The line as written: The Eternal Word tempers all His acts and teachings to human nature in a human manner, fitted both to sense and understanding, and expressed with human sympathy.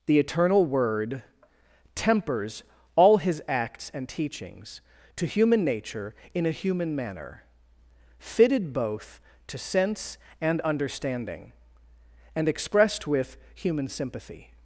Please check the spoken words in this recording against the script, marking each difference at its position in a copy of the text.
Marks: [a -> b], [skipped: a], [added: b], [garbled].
The Eternal Word tempers all His acts and teachings to human nature in a human manner, fitted both to sense and understanding, and expressed with human sympathy.